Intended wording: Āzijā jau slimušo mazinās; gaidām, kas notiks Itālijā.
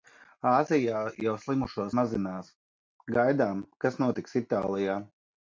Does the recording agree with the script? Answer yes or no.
yes